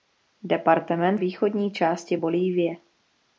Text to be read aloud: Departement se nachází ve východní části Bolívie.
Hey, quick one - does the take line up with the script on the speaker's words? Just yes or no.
no